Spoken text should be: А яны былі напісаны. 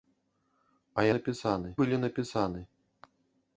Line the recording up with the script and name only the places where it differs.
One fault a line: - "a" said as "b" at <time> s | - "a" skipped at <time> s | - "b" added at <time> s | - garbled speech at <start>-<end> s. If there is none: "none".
- "яны" said as "напісаны" at 1.1 s